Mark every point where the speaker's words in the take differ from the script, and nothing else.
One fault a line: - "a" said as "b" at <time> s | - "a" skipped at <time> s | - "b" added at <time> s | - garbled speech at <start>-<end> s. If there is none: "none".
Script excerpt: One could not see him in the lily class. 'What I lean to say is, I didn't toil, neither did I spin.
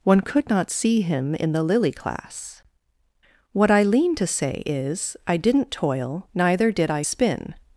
none